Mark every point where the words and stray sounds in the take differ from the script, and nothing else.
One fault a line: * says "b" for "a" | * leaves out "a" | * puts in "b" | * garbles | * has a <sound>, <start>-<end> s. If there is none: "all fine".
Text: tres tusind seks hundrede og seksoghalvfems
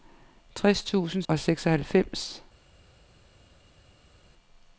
* leaves out "seks hundrede"